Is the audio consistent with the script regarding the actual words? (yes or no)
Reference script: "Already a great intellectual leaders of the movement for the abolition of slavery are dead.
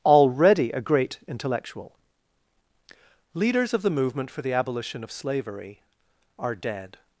yes